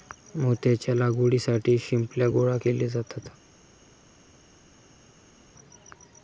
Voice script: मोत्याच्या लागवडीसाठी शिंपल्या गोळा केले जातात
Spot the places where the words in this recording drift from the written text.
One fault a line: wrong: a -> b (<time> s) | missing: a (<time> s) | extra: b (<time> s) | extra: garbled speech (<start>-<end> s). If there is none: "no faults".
no faults